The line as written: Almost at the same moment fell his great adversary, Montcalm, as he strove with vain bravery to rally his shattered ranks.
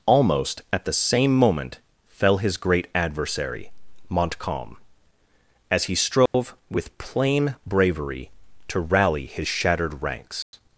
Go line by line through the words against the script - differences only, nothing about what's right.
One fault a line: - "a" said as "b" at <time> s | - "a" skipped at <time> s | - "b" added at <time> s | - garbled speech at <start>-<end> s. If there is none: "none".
- "vain" said as "plain" at 7.0 s